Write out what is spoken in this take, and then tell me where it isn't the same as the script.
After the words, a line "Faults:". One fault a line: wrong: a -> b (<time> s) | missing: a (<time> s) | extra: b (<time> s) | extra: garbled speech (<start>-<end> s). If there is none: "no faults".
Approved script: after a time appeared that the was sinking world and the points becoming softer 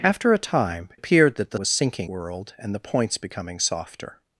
after a time appeared that the was sinking world and the points becoming softer
Faults:
no faults